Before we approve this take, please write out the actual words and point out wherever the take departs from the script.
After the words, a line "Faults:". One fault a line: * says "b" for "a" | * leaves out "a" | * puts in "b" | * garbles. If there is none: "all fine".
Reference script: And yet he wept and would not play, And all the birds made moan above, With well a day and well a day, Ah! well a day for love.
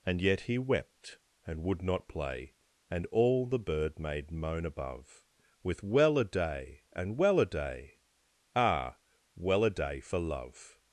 And yet he wept and would not play, And all the bird made moan above, With well a day and well a day, Ah! well a day for love.
Faults:
* says "bird" for "birds"